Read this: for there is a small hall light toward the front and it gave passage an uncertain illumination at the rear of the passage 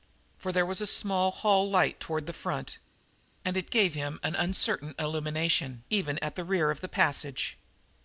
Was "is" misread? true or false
true